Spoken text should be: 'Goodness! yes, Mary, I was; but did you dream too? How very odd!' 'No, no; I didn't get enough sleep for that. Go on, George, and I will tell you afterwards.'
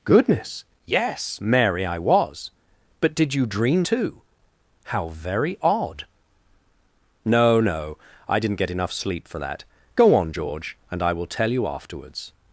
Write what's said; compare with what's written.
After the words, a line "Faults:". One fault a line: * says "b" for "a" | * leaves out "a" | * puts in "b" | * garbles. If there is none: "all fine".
'Goodness! yes, Mary, I was; but did you dream too? How very odd!' 'No, no; I didn't get enough sleep for that. Go on, George, and I will tell you afterwards.'
Faults:
all fine